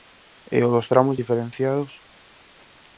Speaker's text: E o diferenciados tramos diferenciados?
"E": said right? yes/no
yes